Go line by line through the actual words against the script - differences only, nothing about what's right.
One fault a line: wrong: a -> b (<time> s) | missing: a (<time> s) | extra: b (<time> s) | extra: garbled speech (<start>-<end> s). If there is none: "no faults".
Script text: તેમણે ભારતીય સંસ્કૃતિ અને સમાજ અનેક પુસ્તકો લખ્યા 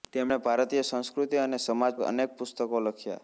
no faults